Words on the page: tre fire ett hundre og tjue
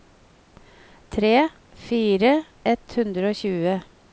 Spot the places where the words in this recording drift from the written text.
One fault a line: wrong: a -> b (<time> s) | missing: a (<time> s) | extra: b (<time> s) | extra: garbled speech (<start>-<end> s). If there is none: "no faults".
no faults